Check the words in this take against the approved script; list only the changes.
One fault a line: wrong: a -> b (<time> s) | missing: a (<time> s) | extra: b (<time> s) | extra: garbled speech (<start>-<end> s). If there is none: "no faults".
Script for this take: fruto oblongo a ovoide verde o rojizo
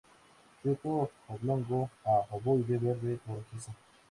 no faults